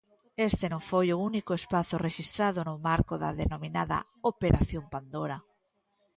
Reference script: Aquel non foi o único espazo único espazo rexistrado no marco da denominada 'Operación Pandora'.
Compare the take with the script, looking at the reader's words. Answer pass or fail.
fail